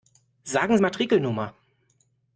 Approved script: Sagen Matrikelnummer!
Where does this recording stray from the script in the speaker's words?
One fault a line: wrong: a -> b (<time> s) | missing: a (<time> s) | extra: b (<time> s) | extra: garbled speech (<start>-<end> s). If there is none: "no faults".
no faults